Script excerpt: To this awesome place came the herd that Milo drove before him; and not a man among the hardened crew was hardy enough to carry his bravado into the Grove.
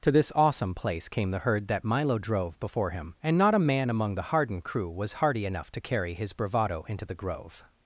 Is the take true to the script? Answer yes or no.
yes